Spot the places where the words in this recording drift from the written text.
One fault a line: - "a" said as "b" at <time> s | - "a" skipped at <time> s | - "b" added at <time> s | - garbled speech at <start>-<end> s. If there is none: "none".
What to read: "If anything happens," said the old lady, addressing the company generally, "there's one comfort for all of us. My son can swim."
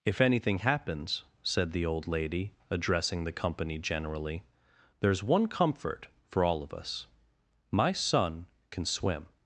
none